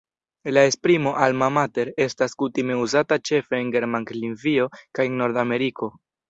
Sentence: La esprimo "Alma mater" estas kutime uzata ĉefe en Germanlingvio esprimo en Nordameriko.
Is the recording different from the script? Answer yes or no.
yes